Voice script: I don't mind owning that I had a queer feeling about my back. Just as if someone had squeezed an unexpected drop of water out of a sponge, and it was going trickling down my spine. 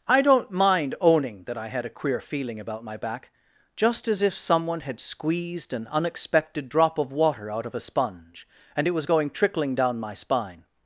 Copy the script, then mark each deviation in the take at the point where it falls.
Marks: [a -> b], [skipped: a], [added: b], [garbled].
I don't mind owning that I had a queer feeling about my back. Just as if someone had squeezed an unexpected drop of water out of a sponge, and it was going trickling down my spine.